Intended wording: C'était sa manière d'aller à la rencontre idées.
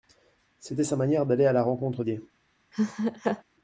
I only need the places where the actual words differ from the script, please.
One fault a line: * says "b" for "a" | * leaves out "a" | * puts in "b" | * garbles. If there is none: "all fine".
all fine